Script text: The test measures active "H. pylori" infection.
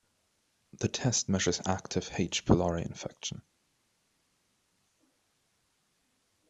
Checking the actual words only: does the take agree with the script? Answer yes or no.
yes